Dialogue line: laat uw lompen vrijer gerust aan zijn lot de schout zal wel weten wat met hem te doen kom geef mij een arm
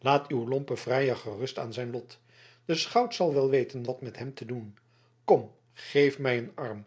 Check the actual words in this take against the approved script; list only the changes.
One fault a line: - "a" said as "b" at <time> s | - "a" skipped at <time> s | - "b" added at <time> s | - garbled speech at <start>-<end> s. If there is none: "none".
none